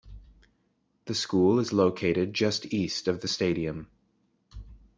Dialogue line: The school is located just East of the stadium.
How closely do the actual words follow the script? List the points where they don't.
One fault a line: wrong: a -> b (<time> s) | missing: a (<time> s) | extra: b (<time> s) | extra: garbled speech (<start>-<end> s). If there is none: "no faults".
no faults